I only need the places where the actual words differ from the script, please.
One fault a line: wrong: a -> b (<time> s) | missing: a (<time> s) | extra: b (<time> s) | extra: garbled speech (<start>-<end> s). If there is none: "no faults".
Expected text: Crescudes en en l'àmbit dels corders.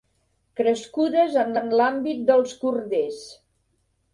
no faults